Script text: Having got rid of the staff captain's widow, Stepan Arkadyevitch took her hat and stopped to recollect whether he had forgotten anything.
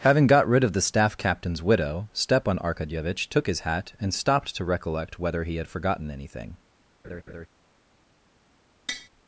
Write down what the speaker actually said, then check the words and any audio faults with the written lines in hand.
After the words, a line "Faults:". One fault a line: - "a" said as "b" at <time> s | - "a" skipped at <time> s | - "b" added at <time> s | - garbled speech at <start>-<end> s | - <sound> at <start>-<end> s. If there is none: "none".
Having got rid of the staff captain's widow, Stepan Arkadyevitch took his hat and stopped to recollect whether he had forgotten anything.
Faults:
- "her" said as "his" at 3.5 s
- laugh at 7.0-7.5 s
- tap at 8.9-9.1 s